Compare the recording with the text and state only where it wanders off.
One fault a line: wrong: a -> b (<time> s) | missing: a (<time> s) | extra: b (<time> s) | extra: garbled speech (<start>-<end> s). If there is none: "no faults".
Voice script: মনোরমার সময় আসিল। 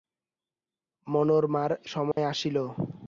no faults